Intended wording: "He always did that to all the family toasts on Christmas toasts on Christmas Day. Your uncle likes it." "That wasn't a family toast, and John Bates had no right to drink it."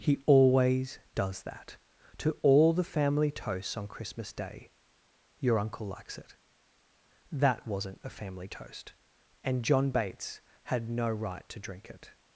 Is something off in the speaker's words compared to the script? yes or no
yes